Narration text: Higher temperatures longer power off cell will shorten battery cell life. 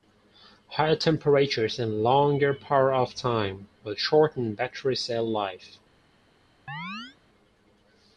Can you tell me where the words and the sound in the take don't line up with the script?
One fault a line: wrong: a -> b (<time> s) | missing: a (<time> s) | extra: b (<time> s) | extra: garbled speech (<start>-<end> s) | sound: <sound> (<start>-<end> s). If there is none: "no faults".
extra: and (1.8 s)
wrong: cell -> time (3.1 s)
sound: chirp (6.7-7.2 s)